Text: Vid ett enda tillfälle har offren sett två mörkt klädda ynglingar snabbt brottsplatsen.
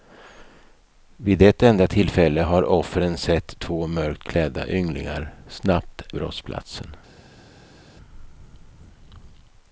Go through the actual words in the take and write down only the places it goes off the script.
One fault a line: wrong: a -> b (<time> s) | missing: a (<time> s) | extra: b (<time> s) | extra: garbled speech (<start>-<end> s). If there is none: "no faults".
no faults